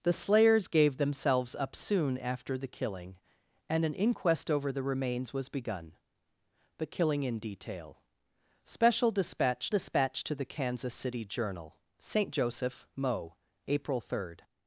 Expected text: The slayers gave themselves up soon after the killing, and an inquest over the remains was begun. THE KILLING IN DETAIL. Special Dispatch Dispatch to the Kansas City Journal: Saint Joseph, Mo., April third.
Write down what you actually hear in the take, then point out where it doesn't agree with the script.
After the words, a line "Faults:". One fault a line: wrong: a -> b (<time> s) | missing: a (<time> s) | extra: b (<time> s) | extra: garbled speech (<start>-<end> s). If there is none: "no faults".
The slayers gave themselves up soon after the killing, and an inquest over the remains was begun. THE KILLING IN DETAIL. Special Dispatch Dispatch to the Kansas City Journal: Saint Joseph, Mo., April third.
Faults:
no faults